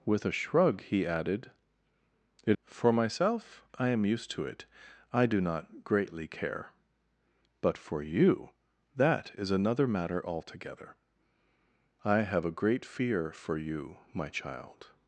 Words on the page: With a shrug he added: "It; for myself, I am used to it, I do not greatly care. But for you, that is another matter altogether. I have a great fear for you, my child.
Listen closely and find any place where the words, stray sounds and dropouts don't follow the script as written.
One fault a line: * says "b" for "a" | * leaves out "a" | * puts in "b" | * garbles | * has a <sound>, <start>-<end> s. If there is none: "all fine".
all fine